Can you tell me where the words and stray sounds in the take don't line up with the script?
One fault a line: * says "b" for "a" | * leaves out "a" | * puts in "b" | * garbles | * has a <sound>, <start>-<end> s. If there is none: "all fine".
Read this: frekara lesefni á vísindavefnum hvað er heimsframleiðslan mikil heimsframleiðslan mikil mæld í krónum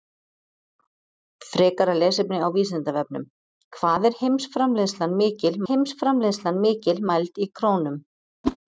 * has a whoosh, 8.4-8.6 s